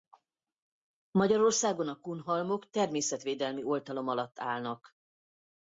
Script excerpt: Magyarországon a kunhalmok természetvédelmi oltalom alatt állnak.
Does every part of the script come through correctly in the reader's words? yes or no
yes